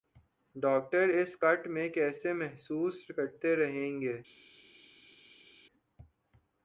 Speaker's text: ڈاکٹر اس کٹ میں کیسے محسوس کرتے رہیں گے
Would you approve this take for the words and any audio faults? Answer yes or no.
yes